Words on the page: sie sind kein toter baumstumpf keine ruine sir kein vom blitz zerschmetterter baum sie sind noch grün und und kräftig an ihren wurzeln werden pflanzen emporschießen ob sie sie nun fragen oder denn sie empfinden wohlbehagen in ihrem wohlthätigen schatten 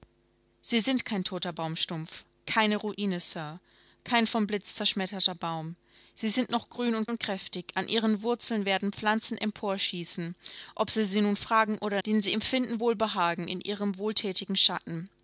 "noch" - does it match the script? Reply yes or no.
yes